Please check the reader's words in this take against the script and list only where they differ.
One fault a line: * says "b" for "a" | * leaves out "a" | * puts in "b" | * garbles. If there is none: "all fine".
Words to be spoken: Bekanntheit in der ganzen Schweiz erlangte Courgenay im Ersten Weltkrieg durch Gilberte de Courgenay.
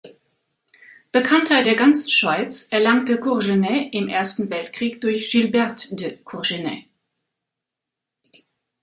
* leaves out "in"